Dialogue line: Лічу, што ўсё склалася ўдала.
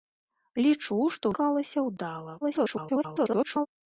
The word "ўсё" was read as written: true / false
false